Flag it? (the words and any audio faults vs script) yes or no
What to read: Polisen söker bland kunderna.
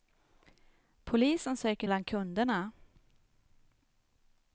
no